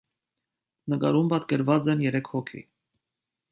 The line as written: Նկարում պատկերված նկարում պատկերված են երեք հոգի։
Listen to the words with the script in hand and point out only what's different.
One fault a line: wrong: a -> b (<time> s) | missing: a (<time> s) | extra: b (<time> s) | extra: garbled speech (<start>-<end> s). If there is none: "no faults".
missing: նկարում պատկերված (1.9 s)